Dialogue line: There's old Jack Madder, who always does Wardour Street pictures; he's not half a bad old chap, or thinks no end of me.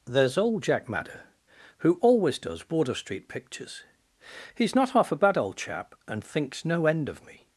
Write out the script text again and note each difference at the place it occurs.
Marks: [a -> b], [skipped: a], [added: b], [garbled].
There's old Jack Madder, who always does Wardour Street pictures; he's not half a bad old chap, [or -> and] thinks no end of me.